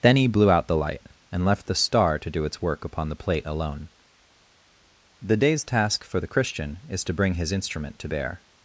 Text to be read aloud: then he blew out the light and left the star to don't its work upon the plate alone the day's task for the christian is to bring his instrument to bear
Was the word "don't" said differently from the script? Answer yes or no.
yes